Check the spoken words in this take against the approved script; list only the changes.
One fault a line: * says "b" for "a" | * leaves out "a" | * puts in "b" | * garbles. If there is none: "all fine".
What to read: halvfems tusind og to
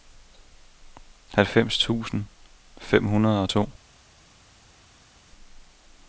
* puts in "fem hundrede"